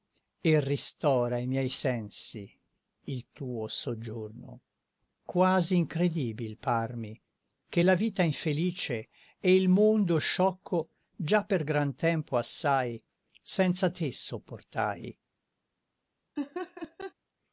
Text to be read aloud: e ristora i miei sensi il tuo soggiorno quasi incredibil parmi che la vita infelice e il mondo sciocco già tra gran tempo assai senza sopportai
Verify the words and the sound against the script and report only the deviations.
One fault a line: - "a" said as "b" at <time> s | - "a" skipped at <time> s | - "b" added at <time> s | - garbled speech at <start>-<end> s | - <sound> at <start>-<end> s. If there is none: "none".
- "tra" said as "per" at 11.4 s
- "te" added at 13.9 s
- laugh at 16.4-17.1 s